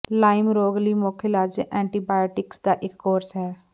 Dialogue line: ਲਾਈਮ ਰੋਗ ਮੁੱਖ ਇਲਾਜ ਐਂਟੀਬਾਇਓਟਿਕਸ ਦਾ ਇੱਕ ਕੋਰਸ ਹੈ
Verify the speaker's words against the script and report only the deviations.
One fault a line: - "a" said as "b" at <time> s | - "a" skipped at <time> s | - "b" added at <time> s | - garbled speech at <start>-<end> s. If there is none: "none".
- "ਲਈ" added at 0.8 s